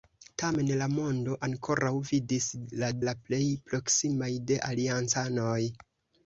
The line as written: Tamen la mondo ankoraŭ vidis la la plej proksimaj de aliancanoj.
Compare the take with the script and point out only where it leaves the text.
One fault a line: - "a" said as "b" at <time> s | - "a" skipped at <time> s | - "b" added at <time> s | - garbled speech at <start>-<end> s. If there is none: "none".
none